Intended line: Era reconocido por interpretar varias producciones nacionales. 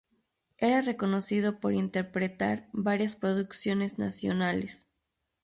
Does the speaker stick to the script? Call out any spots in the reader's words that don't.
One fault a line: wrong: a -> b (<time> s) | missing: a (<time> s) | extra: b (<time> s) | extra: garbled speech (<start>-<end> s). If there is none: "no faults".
no faults